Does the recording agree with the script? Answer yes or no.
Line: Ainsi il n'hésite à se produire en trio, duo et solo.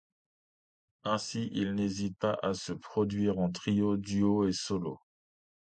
no